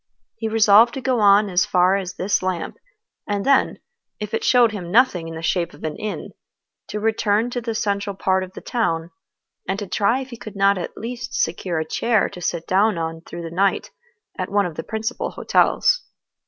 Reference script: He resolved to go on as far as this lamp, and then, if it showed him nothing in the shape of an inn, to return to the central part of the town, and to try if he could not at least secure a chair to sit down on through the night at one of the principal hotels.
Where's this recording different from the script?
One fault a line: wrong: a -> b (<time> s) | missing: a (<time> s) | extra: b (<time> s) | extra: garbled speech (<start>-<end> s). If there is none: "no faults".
no faults